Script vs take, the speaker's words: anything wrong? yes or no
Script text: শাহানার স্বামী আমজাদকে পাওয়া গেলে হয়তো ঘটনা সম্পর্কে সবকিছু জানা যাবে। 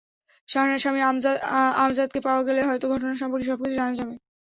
no